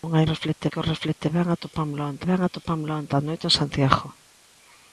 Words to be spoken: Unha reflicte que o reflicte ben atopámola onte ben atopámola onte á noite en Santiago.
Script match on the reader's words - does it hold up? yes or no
yes